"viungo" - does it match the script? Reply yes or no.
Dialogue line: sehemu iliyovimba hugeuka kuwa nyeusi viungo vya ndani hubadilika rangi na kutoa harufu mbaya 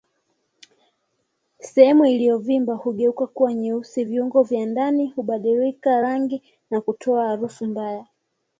yes